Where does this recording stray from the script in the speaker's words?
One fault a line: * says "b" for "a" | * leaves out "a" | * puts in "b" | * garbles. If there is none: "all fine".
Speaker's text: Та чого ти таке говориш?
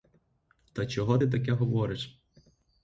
all fine